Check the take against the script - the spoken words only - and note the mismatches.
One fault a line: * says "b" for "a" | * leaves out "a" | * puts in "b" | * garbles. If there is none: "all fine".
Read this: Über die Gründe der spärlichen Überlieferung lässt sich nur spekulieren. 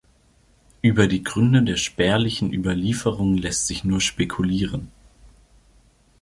all fine